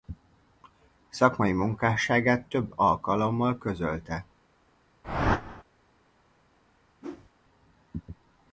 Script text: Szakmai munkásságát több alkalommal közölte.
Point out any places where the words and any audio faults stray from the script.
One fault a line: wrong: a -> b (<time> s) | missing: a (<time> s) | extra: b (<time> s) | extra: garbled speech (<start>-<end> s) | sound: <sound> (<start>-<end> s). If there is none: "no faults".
sound: whoosh (5.0-5.6 s)
sound: whoosh (7.0-7.3 s)